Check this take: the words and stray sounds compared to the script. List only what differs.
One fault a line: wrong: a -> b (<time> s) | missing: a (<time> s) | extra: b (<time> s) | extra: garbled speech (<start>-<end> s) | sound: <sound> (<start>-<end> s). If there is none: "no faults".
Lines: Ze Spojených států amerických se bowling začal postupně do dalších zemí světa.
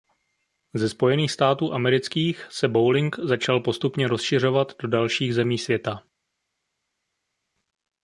extra: rozšiřovat (4.1 s)